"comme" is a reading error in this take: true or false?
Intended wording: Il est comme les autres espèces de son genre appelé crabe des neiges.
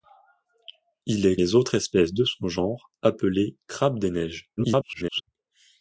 true